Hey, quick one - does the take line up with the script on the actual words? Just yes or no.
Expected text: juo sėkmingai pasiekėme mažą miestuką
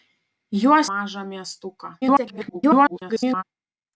no